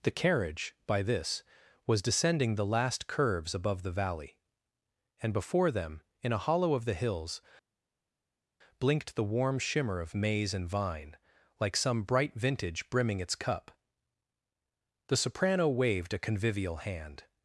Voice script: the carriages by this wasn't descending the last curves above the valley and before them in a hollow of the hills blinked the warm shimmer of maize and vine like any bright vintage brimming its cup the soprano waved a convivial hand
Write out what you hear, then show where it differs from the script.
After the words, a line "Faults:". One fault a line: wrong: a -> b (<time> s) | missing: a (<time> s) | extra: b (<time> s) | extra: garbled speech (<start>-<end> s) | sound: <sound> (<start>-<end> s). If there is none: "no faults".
the carriage by this was descending the last curves above the valley and before them in a hollow of the hills blinked the warm shimmer of maize and vine like some bright vintage brimming its cup the soprano waved a convivial hand
Faults:
wrong: carriages -> carriage (0.1 s)
wrong: wasn't -> was (1.9 s)
wrong: any -> some (11.8 s)